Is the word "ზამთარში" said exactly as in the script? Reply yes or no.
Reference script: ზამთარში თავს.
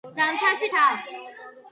yes